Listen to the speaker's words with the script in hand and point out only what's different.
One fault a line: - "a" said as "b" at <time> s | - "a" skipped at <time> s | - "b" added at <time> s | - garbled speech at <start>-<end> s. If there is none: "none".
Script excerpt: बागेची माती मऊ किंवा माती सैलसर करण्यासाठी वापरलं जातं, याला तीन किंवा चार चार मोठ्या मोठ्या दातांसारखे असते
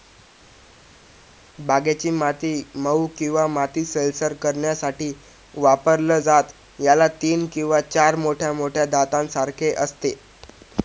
- "चार" skipped at 8.2 s